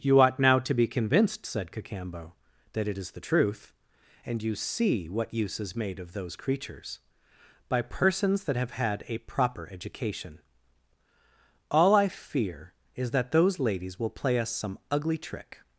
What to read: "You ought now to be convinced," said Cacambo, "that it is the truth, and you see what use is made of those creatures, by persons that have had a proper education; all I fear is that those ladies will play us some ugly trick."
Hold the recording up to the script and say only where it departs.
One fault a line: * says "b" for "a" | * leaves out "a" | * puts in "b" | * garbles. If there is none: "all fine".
all fine